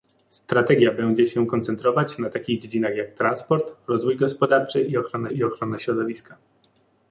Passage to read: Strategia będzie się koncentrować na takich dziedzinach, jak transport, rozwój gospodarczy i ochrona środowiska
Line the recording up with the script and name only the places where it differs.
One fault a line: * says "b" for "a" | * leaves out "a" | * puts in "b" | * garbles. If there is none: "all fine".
* puts in "i ochrona"